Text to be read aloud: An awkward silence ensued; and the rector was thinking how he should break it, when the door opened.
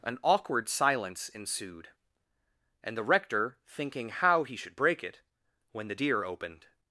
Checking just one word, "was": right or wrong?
wrong